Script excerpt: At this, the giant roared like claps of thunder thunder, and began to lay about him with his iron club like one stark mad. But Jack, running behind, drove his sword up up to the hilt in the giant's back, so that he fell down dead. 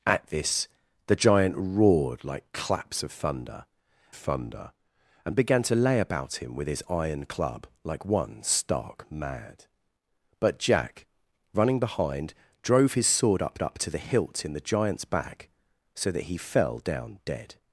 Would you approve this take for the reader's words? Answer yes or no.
yes